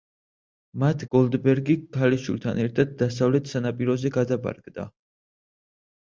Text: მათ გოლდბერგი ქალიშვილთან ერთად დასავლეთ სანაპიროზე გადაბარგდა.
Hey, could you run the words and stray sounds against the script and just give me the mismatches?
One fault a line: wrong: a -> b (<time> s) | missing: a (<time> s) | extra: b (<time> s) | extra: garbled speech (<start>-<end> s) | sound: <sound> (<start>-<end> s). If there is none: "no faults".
no faults